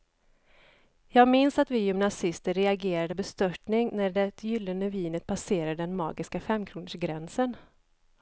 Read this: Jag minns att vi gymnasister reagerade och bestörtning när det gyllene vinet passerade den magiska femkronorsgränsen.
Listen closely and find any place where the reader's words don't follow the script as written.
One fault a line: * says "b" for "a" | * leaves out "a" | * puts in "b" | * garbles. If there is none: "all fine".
all fine